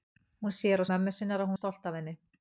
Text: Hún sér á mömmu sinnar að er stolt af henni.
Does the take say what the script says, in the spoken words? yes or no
yes